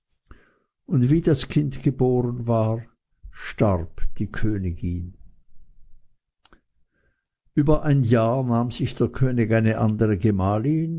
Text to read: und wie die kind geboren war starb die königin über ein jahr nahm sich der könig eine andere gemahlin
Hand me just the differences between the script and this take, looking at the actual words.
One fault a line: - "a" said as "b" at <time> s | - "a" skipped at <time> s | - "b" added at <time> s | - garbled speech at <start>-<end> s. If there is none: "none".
- "die" said as "das" at 1.2 s